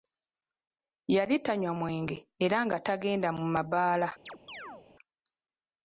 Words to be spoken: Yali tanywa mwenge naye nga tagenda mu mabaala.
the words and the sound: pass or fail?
fail